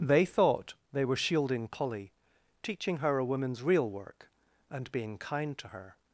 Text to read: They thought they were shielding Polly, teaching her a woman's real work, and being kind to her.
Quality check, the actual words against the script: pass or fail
pass